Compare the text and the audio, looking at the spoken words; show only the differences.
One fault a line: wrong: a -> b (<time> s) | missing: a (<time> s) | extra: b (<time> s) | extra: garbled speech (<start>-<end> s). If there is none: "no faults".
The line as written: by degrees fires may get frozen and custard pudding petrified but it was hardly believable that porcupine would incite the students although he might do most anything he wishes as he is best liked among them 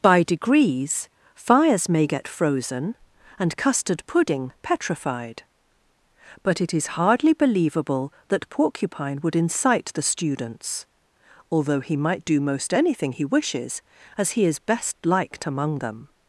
wrong: was -> is (6.7 s)